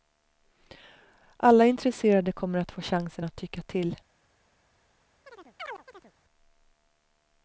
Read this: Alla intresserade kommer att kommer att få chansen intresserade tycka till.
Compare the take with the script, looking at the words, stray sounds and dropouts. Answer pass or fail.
fail